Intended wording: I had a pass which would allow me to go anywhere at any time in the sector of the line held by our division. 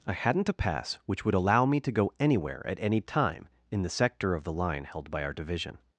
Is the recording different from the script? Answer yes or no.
yes